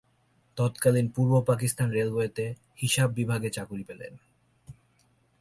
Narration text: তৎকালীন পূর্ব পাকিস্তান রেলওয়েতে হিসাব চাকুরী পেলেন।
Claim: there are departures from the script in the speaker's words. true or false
true